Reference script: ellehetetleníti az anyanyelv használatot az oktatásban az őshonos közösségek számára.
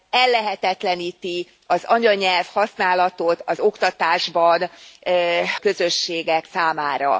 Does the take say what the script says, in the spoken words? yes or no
no